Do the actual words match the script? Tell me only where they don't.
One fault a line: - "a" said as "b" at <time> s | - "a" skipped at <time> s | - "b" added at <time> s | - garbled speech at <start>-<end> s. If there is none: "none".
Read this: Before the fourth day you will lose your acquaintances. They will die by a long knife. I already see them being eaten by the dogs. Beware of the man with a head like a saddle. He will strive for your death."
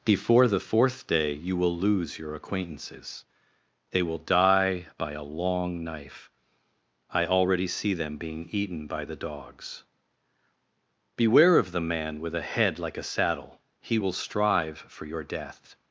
none